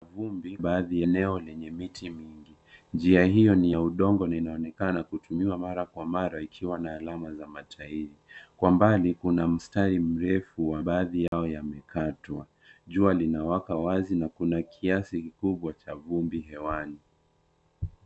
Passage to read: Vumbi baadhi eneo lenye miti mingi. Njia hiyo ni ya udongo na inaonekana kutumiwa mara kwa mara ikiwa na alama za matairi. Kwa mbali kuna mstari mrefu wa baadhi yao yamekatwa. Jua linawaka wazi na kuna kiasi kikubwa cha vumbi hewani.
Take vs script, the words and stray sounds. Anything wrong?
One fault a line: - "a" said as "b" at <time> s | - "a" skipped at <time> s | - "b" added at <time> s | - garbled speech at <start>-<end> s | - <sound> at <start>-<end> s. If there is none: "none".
- dropout at 11.3-11.3 s